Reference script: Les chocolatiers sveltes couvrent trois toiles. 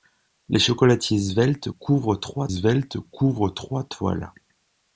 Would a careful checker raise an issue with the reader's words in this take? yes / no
yes